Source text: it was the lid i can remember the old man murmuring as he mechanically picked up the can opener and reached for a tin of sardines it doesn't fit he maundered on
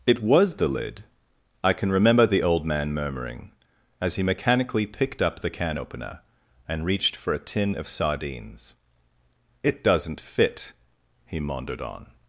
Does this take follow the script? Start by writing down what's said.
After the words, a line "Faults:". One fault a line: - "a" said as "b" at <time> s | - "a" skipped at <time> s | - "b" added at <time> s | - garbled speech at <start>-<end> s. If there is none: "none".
it was the lid i can remember the old man murmuring as he mechanically picked up the can opener and reached for a tin of sardines it doesn't fit he maundered on
Faults:
none